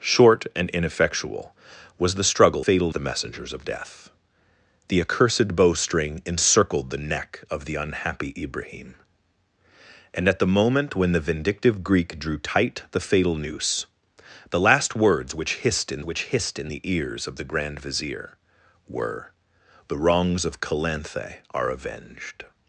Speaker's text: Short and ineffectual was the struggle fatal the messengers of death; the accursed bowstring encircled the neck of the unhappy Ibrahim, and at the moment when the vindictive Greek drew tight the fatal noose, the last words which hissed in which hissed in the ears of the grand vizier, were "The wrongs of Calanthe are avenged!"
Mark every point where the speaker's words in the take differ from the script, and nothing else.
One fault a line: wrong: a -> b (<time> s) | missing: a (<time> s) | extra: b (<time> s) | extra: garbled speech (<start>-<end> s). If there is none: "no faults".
no faults